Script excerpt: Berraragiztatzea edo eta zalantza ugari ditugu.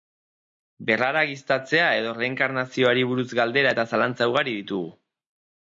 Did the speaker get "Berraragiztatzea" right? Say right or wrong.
right